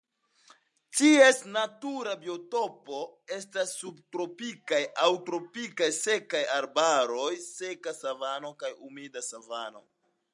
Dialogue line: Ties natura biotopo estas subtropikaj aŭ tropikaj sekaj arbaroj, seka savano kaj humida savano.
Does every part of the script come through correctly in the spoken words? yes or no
yes